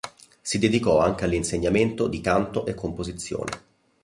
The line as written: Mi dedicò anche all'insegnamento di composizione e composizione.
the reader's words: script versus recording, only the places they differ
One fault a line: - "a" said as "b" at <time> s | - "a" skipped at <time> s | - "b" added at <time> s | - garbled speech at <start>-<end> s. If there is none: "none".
- "Mi" said as "Si" at 0.4 s
- "composizione" said as "canto" at 2.2 s